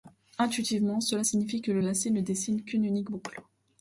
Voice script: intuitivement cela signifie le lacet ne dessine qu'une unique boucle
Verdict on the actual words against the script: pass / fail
fail